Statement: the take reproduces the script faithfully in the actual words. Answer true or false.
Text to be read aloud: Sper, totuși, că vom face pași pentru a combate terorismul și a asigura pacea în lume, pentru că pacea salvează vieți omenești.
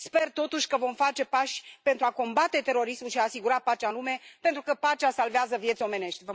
true